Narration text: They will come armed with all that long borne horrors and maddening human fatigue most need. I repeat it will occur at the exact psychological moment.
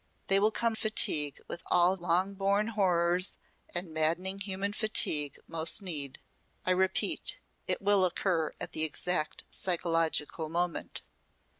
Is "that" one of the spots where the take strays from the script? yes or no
yes